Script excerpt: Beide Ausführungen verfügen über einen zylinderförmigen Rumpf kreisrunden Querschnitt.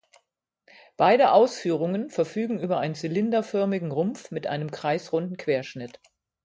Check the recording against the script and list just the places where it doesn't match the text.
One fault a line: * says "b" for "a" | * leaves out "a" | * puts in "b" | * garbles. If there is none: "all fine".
* puts in "mit einem"